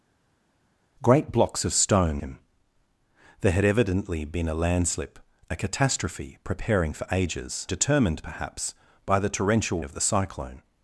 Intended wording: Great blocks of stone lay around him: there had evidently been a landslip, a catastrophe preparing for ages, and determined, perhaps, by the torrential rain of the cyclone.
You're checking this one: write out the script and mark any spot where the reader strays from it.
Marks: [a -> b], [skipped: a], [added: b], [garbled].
Great blocks of stone [skipped: lay around] him: there had evidently been a landslip, a catastrophe preparing for ages, [skipped: and] determined, perhaps, by the torrential [skipped: rain] of the cyclone.